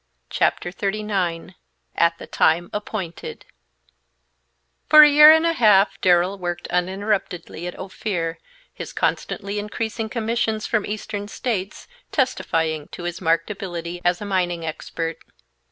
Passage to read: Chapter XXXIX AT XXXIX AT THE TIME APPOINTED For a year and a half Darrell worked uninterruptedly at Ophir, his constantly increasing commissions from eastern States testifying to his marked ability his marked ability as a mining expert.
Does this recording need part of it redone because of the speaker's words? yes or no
yes